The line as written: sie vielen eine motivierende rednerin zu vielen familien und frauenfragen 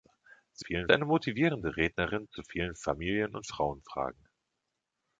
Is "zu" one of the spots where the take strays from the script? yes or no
no